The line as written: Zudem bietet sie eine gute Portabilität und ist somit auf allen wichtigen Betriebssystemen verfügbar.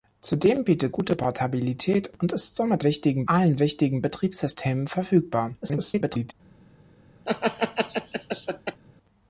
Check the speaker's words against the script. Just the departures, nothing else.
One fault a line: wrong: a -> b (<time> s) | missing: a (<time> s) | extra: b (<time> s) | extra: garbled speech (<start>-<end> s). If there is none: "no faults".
missing: sie eine (0.9 s)
wrong: auf -> wichtigen (2.8 s)
extra: garbled speech (5.6-6.3 s)